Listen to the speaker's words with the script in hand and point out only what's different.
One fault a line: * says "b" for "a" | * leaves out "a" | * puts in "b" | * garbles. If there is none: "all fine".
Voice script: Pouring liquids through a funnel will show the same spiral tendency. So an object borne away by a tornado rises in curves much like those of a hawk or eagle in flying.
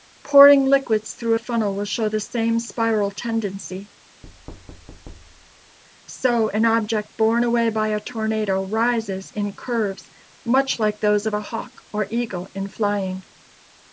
all fine